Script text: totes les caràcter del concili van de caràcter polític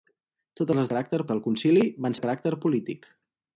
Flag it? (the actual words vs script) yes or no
no